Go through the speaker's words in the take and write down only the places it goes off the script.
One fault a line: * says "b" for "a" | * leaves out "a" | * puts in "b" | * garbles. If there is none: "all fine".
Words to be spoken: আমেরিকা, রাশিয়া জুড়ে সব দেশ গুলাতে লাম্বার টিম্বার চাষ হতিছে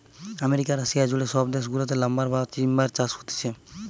* puts in "বা"